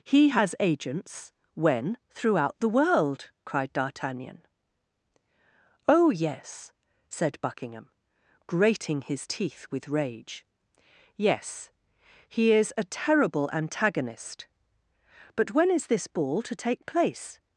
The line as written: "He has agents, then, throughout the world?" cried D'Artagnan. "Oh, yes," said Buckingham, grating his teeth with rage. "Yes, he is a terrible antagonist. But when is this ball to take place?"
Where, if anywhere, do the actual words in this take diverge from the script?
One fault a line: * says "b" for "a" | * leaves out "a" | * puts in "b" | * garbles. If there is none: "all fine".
* says "when" for "then"